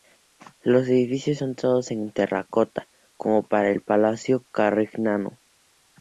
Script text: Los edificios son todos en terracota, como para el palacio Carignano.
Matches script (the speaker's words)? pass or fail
pass